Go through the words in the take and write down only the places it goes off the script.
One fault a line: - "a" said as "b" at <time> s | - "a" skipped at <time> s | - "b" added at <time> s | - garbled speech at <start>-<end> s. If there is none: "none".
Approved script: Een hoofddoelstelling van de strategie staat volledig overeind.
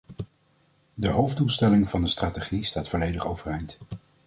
- "Een" said as "De" at 0.9 s